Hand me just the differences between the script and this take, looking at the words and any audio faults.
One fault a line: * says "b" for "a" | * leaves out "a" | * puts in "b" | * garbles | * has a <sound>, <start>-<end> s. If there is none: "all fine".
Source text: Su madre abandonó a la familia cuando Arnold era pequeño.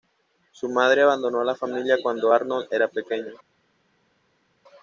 all fine